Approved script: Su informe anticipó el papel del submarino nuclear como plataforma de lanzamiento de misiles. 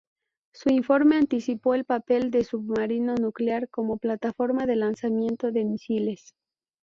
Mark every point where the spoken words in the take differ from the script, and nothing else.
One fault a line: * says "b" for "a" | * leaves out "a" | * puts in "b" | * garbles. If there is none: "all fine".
all fine